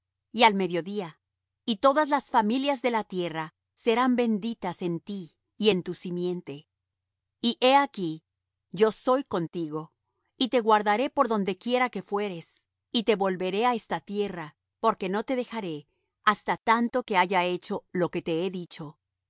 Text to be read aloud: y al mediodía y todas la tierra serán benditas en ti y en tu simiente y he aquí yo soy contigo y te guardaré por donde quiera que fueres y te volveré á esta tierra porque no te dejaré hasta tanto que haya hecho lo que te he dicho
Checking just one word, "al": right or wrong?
right